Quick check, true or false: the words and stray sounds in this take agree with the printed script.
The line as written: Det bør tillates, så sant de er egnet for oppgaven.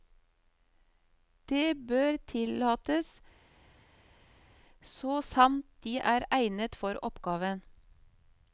true